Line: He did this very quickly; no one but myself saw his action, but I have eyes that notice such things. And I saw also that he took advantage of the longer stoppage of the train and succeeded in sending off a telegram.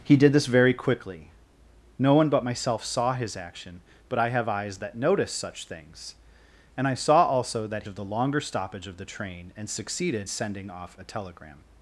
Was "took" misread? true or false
true